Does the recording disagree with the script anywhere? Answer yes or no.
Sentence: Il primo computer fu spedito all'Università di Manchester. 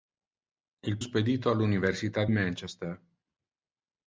yes